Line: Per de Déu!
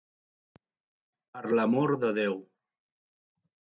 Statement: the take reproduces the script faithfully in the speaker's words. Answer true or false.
false